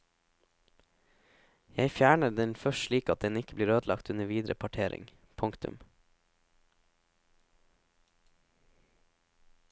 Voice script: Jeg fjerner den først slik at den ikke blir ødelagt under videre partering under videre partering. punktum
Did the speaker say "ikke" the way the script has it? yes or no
yes